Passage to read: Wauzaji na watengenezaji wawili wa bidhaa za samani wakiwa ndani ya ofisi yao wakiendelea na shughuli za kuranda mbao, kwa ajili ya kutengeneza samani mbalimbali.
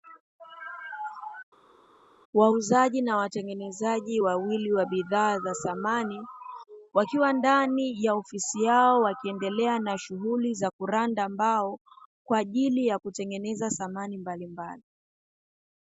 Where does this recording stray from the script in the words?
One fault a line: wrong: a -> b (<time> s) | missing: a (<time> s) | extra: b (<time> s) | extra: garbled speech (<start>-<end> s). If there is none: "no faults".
no faults